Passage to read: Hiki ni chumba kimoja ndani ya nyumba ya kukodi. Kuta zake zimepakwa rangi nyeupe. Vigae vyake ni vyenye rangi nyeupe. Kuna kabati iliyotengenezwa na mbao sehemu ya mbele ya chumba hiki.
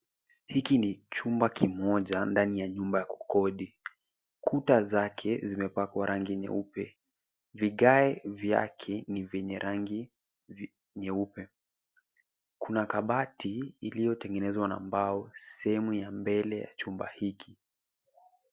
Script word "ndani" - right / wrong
right